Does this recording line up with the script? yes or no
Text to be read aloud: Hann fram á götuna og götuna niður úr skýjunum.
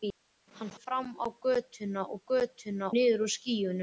yes